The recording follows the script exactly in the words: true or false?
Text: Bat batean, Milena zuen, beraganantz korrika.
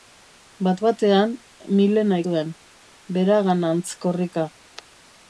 true